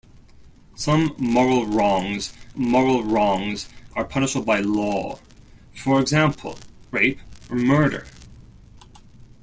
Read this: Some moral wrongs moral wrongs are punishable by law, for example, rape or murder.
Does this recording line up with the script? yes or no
yes